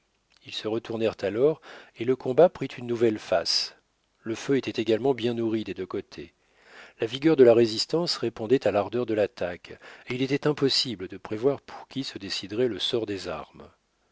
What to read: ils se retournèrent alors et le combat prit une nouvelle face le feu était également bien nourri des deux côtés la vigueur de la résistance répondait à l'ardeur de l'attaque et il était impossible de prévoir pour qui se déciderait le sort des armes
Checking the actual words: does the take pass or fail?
pass